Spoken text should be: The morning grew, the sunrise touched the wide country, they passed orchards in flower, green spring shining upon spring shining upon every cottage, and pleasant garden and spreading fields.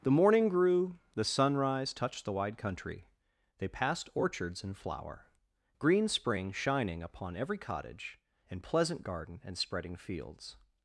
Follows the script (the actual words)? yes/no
no